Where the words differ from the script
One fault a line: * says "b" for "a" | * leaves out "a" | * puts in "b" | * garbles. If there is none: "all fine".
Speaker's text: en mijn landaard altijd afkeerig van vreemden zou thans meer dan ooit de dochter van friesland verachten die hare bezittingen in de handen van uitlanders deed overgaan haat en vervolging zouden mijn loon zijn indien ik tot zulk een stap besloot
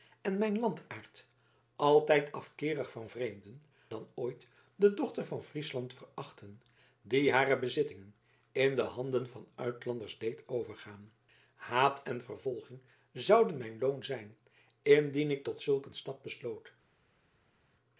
* leaves out "zou thans meer"